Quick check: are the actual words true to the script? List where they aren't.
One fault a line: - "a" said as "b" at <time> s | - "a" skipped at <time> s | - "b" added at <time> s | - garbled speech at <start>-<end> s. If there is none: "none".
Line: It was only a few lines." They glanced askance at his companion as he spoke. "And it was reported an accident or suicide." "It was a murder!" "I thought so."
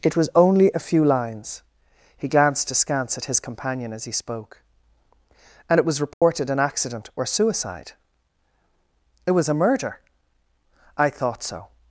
- "They" said as "He" at 2.2 s